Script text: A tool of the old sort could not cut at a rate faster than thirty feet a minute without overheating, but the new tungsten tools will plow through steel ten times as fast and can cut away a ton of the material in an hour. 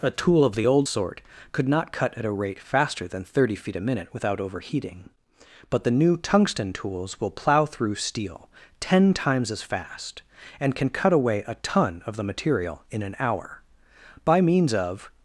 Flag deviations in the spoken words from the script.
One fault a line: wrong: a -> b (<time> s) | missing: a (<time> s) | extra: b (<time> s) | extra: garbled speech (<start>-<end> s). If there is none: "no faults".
extra: By means of (14.3 s)